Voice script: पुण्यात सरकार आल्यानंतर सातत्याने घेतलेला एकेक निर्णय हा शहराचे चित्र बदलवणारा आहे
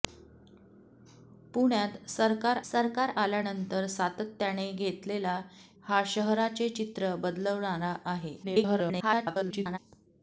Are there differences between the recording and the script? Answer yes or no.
yes